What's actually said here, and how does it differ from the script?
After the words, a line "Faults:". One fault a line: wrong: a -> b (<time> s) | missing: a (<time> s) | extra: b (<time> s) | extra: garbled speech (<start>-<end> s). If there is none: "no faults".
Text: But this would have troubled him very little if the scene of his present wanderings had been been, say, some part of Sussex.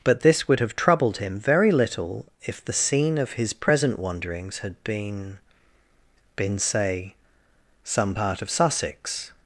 But this would have troubled him very little if the scene of his present wanderings had been been, say, some part of Sussex.
Faults:
no faults